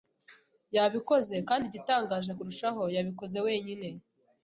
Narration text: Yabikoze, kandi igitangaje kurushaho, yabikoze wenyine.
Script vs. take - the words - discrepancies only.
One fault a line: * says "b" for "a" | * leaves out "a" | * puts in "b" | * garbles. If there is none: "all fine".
all fine